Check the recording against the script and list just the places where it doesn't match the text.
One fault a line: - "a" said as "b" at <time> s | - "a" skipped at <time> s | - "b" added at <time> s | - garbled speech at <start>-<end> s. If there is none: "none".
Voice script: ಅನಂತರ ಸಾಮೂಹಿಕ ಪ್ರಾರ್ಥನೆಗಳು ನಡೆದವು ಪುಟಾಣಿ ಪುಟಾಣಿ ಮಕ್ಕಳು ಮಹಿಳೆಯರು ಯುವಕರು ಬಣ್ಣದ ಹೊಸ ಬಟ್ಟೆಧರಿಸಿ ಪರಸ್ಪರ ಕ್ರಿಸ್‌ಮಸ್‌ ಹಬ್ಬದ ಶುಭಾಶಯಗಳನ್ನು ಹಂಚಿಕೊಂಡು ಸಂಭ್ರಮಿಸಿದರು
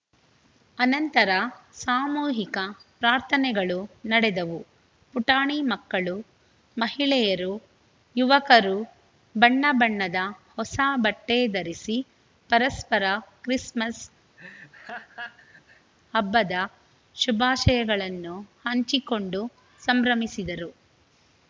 - "ಪುಟಾಣಿ" skipped at 5.6 s
- "ಬಣ್ಣ" added at 9.3 s